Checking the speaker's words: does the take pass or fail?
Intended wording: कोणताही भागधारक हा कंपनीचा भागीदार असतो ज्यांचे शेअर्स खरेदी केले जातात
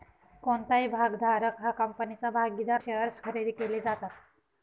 fail